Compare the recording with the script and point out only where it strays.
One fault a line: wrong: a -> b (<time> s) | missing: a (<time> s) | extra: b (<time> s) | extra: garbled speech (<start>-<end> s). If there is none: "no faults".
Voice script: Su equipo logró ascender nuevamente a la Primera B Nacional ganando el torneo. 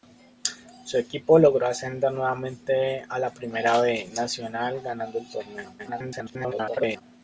extra: garbled speech (5.8-7.0 s)